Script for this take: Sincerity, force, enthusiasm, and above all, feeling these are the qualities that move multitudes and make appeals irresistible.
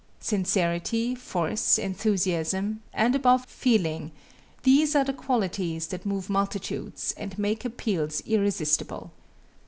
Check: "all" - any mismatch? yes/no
yes